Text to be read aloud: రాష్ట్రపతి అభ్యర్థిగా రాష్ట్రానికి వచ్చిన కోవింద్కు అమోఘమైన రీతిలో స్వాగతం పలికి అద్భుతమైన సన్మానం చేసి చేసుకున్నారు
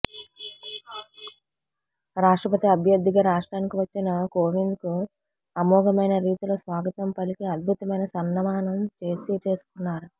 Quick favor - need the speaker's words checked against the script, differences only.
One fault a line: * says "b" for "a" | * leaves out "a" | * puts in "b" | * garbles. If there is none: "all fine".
all fine